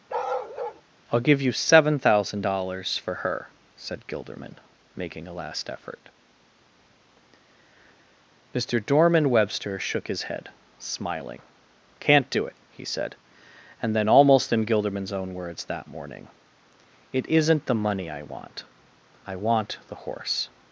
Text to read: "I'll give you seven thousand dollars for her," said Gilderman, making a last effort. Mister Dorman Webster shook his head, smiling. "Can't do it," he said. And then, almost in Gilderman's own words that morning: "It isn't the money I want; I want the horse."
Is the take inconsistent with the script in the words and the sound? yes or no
yes